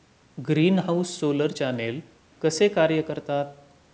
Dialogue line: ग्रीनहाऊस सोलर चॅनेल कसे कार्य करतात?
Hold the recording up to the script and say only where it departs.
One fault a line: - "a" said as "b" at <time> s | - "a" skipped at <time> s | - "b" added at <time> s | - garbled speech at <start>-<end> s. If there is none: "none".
none